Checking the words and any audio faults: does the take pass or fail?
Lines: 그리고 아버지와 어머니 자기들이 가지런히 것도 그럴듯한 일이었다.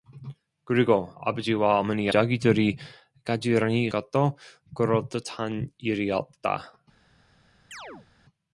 fail